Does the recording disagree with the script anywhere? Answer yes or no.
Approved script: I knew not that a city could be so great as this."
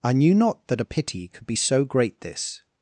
yes